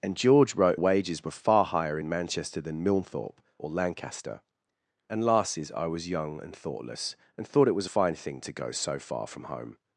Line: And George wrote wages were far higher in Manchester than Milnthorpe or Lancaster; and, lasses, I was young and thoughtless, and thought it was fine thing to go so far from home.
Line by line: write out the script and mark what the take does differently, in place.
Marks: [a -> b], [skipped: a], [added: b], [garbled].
And George wrote wages were far higher in Manchester than Milnthorpe or Lancaster; and, lasses, I was young and thoughtless, and thought it was fine thing to go so far from home.